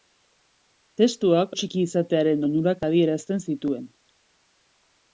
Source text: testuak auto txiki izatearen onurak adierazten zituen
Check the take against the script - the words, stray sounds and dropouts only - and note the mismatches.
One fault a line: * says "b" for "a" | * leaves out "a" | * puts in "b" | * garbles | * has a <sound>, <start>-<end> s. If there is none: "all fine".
* leaves out "auto"